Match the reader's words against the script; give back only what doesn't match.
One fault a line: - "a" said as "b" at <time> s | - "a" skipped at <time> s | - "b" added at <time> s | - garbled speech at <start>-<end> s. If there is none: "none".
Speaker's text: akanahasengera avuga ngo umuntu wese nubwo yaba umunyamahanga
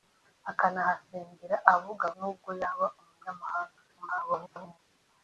- "ngo umuntu wese" skipped at 2.0 s
- garbled speech at 3.9-4.8 s